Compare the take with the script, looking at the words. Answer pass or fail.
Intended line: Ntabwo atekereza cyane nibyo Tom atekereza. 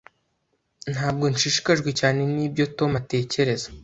fail